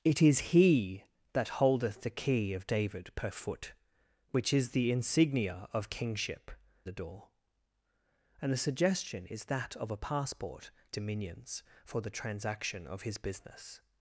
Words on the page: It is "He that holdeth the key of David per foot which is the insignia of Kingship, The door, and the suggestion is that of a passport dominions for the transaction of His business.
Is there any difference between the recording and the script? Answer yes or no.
no